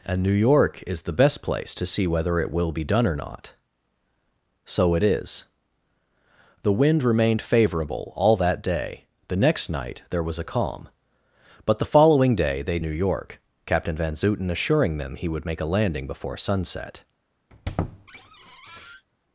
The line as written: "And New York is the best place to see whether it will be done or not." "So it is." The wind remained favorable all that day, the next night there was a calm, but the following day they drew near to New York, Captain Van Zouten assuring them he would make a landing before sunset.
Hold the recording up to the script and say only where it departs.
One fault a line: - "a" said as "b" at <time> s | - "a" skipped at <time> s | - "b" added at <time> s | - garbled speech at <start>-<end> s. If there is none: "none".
- "drew near to" skipped at 12.8 s